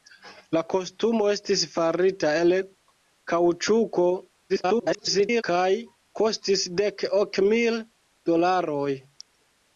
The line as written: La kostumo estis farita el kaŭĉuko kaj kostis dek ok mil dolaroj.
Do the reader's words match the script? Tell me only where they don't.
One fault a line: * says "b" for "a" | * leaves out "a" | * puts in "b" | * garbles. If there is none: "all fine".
* garbles